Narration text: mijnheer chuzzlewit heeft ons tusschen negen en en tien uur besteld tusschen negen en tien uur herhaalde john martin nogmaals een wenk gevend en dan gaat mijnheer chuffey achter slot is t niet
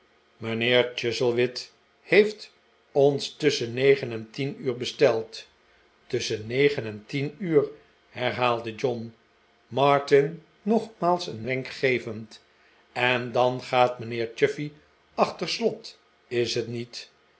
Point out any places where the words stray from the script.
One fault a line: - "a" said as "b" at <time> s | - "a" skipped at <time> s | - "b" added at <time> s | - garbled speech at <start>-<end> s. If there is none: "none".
- "en" skipped at 4.3 s